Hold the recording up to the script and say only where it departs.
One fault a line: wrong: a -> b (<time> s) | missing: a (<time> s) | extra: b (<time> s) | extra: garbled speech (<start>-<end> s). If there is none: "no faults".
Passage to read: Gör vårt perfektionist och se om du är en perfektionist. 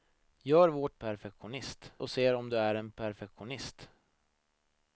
no faults